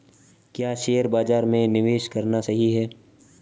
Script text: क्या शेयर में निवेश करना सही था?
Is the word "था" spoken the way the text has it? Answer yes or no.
no